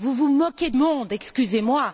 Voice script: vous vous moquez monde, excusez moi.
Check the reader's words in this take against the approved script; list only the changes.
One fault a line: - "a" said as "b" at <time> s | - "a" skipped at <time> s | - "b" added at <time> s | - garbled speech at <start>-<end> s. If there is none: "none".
none